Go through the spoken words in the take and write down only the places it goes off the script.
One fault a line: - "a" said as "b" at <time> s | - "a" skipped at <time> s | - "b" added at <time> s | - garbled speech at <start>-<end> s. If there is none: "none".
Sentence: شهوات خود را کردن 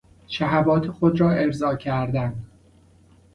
- "ارضا" added at 1.3 s